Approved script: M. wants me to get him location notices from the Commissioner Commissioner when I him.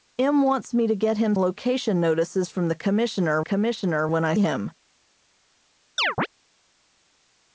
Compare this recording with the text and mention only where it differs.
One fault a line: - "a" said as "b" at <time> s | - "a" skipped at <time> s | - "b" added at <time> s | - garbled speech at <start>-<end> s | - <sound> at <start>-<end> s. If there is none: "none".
- chirp at 6.0-6.3 s